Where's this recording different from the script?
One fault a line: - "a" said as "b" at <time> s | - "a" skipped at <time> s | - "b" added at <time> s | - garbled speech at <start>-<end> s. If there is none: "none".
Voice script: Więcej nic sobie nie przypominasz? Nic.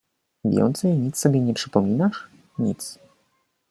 none